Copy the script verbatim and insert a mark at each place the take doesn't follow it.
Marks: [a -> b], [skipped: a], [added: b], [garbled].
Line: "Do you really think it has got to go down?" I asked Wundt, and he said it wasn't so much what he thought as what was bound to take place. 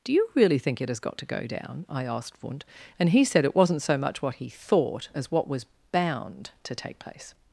"Do you really think it has got to go down?" I asked Wundt, and he said it wasn't so much what he thought as what was bound to take place.